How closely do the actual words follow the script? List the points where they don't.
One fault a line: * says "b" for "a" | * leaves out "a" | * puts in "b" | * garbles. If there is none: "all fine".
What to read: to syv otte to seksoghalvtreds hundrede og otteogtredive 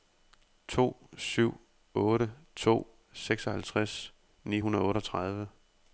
* puts in "ni"